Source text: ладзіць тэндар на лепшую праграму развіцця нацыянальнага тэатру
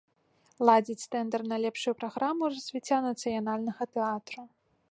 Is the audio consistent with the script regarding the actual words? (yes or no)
yes